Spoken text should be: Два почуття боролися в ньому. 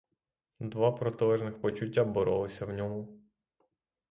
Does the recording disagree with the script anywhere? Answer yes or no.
yes